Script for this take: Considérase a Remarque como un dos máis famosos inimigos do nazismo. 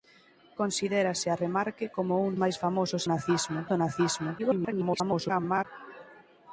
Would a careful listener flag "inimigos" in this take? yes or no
yes